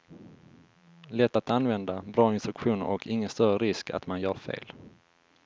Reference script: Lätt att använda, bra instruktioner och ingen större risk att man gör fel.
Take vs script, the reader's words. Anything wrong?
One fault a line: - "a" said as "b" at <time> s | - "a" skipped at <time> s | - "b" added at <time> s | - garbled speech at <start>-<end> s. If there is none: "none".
none